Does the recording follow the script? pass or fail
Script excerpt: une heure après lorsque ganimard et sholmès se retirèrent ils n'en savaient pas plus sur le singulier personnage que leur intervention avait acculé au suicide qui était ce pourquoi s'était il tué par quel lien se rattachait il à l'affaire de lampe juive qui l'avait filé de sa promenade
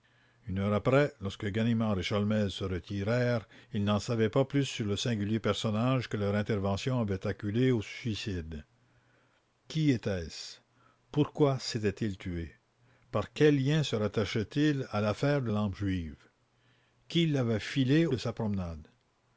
pass